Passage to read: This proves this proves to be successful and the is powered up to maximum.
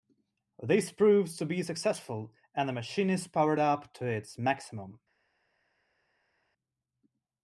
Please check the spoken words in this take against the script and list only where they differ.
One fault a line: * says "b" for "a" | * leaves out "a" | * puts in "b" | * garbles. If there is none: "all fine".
* leaves out "this proves"
* puts in "machine"
* puts in "its"